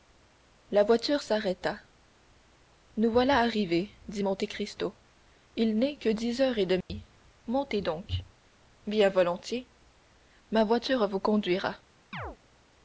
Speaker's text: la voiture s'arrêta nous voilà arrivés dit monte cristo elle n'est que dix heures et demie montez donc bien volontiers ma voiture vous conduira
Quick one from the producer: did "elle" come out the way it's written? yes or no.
no